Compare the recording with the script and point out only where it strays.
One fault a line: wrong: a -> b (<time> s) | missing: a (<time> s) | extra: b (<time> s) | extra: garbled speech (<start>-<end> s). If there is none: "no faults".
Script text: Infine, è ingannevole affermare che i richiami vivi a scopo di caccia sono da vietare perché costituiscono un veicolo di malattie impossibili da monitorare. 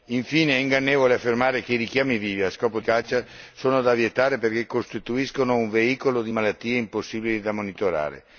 missing: di (2.8 s)